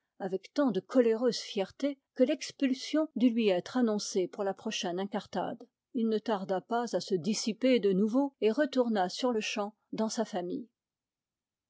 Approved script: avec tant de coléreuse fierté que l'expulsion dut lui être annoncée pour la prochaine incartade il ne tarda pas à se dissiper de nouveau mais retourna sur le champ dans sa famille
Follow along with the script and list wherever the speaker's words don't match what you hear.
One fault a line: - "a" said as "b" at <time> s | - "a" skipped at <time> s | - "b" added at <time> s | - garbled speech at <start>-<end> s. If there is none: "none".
- "mais" said as "et" at 8.4 s